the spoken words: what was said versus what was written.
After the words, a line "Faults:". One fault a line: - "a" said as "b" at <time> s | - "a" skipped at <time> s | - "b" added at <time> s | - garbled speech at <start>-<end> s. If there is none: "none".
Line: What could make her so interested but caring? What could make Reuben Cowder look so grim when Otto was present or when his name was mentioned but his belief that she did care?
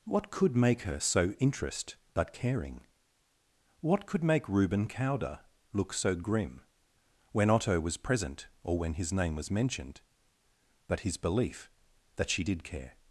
What could make her so interest but caring? What could make Reuben Cowder look so grim when Otto was present or when his name was mentioned but his belief that she did care?
Faults:
- "interested" said as "interest" at 1.4 s